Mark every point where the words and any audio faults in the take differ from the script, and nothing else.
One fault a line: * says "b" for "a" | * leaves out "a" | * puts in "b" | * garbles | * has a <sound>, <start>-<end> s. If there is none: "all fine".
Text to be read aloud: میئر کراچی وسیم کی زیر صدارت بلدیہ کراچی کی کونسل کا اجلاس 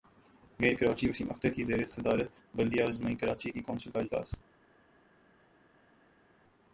* puts in "اختر"
* puts in "عظمی"